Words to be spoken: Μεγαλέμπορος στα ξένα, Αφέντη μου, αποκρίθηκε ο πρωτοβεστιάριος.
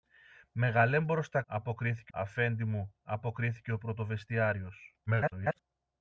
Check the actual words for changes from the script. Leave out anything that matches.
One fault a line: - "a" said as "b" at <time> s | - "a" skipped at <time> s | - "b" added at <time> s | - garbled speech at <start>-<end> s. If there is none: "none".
- "ξένα" said as "αποκρίθηκε" at 1.5 s
- garbled speech at 5.1-5.6 s